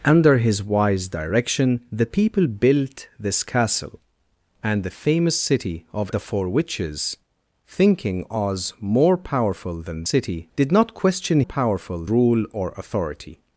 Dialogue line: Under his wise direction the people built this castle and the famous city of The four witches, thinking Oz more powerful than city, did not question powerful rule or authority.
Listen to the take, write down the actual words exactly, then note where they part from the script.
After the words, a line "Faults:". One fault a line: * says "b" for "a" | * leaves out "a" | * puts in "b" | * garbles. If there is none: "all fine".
Under his wise direction the people built this castle and the famous city of The four witches, thinking Oz more powerful than city, did not question powerful rule or authority.
Faults:
all fine